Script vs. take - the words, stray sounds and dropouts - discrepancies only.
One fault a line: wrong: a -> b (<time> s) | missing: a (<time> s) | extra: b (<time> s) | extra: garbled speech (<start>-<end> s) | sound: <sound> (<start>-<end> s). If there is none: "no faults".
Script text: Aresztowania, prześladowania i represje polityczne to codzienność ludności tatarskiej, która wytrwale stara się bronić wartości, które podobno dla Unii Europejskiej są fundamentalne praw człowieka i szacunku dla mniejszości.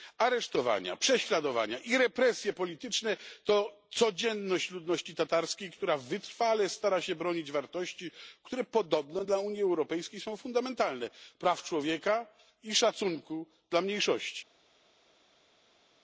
no faults